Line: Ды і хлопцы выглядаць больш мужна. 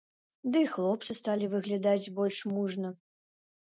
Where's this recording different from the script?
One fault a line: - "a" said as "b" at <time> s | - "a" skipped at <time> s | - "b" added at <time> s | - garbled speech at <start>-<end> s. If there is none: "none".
- "сталі" added at 1.2 s